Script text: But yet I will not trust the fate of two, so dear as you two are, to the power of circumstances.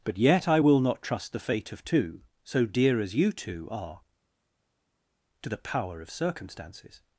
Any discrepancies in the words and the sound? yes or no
no